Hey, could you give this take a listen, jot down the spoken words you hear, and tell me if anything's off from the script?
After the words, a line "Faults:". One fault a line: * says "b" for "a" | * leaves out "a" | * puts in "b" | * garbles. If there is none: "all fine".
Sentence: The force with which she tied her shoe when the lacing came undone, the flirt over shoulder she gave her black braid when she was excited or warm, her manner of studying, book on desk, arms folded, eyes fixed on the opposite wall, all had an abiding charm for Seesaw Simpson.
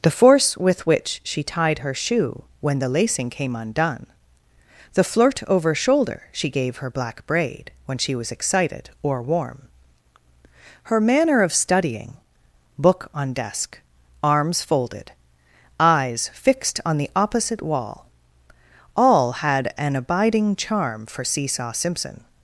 The force with which she tied her shoe when the lacing came undone, the flirt over shoulder she gave her black braid when she was excited or warm, her manner of studying, book on desk, arms folded, eyes fixed on the opposite wall, all had an abiding charm for Seesaw Simpson.
Faults:
all fine